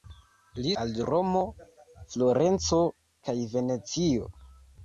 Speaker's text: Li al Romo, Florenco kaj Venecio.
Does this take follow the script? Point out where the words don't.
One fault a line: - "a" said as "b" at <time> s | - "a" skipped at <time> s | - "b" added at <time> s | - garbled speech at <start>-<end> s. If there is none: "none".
none